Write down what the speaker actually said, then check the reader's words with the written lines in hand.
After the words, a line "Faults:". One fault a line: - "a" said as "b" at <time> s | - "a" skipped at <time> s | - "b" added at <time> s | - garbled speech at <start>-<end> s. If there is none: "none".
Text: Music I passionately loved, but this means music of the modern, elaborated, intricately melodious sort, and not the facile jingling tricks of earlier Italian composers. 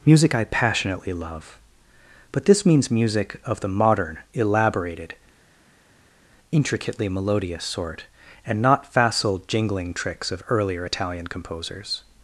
Music I passionately love, but this means music of the modern, elaborated, intricately melodious sort, and not facile jingling tricks of earlier Italian composers.
Faults:
- "loved" said as "love" at 1.1 s
- "the" skipped at 8.9 s